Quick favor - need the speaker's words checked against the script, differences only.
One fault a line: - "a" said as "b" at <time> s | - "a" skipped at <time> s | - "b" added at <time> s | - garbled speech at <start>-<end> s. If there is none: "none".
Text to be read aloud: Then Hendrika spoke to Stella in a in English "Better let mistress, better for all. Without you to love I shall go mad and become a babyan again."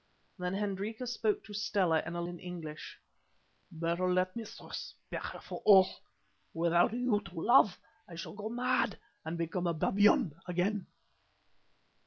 none